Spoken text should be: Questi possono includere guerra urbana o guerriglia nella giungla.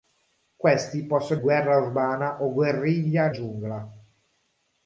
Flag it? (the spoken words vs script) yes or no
yes